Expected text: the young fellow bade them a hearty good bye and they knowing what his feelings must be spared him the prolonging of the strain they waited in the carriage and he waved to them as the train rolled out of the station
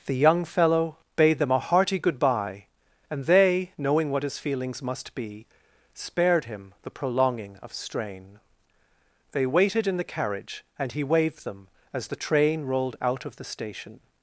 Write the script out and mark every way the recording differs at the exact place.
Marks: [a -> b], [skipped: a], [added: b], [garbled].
the young fellow bade them a hearty good bye and they knowing what his feelings must be spared him the prolonging of [skipped: the] strain they waited in the carriage and he waved [skipped: to] them as the train rolled out of the station